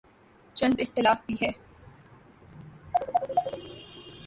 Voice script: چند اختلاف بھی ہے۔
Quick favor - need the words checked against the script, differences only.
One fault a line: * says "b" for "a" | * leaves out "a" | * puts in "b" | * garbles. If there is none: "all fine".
all fine